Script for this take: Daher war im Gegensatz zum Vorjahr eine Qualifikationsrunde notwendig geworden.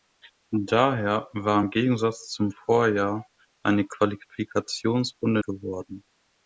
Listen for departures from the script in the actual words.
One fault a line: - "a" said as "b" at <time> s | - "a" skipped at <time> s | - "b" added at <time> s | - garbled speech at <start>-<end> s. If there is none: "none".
- "notwendig" skipped at 5.4 s